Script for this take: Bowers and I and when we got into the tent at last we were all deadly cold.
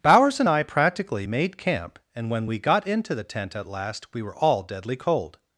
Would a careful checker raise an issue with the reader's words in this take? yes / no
yes